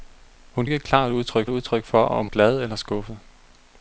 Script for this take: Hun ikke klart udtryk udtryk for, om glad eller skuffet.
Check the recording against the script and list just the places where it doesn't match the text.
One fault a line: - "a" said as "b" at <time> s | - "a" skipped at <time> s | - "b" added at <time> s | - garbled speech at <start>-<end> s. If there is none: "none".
none